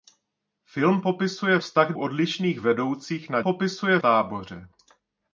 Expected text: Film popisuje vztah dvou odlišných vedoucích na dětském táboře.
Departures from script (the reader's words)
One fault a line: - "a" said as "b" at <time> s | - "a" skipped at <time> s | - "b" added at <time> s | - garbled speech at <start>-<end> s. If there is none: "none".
- "dvou" skipped at 1.9 s
- "dětském" said as "popisuje" at 3.4 s